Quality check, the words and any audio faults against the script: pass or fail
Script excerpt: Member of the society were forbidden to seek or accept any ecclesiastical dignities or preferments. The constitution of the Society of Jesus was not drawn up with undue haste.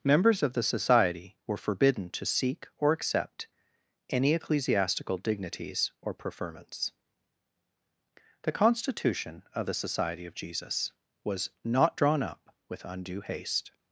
fail